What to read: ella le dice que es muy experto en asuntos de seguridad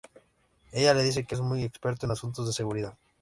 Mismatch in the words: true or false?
false